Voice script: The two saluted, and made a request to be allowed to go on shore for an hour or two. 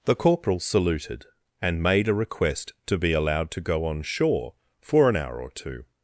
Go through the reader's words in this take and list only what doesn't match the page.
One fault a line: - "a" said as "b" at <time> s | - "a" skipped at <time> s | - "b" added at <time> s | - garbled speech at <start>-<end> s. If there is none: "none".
- "two" said as "corporal" at 0.1 s